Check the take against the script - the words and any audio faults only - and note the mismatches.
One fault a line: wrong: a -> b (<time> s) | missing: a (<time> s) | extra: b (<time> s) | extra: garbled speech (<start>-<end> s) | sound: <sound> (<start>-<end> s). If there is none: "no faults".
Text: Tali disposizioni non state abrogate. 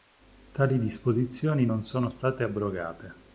extra: sono (1.8 s)